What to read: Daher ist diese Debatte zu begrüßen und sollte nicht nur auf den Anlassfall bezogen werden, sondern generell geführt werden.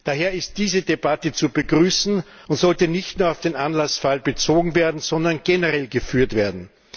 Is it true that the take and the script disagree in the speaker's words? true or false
false